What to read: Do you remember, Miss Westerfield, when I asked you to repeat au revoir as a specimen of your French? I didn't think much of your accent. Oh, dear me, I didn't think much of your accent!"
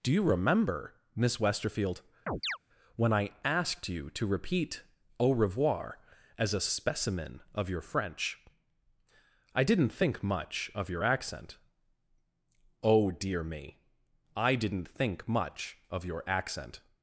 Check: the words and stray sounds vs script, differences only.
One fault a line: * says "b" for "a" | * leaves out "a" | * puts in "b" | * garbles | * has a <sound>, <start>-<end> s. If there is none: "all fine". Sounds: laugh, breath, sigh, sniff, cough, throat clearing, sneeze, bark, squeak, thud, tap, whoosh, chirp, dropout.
* has a chirp, 2.3-2.6 s